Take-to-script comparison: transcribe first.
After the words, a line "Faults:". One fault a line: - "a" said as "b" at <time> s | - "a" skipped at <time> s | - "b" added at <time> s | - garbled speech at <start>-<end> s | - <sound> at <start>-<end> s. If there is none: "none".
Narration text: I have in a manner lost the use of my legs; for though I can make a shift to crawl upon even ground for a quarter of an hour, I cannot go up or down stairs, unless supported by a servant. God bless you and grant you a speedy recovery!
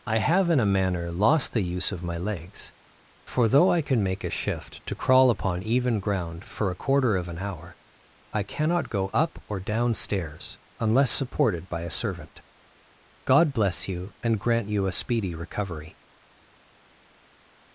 I have in a manner lost the use of my legs; for though I can make a shift to crawl upon even ground for a quarter of an hour, I cannot go up or down stairs, unless supported by a servant. God bless you and grant you a speedy recovery!
Faults:
none